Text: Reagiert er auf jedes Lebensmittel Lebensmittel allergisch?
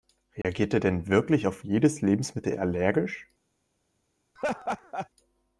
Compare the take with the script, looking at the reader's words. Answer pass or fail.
fail